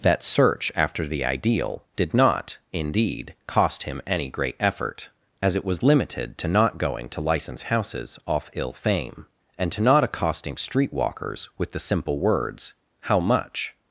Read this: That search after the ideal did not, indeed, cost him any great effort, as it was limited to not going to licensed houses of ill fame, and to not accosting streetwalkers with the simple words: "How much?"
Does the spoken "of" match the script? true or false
false